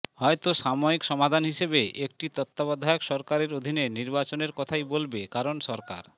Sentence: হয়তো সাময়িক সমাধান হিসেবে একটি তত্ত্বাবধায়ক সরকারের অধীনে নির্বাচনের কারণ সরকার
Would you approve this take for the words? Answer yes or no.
no